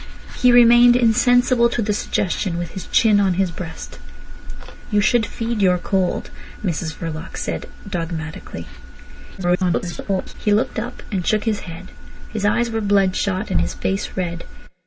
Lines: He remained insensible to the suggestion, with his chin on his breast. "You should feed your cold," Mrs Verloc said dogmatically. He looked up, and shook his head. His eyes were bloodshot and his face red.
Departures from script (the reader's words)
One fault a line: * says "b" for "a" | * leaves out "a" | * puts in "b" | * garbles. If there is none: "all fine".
* garbles